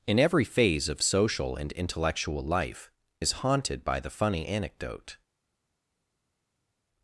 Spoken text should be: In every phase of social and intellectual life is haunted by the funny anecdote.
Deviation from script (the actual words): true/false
false